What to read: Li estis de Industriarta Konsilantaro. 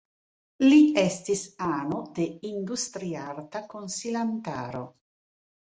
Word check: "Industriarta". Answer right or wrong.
right